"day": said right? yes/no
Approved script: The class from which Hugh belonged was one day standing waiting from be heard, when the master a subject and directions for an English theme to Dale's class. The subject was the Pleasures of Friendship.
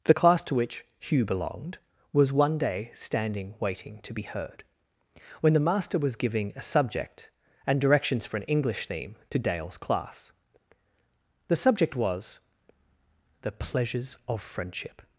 yes